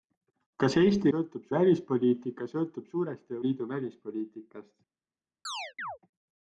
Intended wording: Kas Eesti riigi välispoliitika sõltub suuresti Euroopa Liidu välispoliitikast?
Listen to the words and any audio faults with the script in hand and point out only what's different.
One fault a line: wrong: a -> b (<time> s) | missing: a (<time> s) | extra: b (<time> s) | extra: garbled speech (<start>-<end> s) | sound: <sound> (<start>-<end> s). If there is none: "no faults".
wrong: riigi -> sõltub (1.1 s)
missing: Euroopa (3.4 s)
sound: chirp (5.4-6.0 s)